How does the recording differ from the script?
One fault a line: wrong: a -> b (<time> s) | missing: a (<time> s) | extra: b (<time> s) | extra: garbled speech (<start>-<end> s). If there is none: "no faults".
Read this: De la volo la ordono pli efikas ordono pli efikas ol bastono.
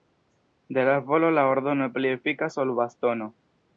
missing: ordono pli efikas (2.6 s)